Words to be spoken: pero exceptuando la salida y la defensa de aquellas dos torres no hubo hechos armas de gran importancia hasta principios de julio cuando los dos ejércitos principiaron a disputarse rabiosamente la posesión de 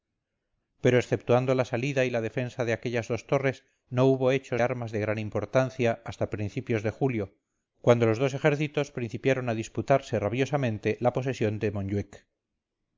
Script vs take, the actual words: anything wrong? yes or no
no